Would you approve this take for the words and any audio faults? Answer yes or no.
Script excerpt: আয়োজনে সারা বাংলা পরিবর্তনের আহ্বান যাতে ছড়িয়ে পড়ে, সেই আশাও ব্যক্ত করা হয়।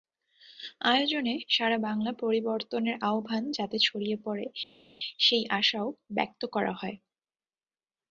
yes